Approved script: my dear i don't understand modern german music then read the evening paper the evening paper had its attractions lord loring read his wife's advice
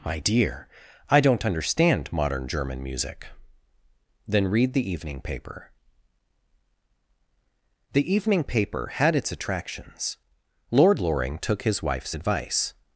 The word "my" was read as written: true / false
true